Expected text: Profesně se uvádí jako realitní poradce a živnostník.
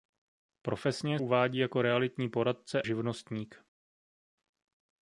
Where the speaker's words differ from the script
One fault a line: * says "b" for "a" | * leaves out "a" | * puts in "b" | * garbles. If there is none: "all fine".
* leaves out "se"
* leaves out "a"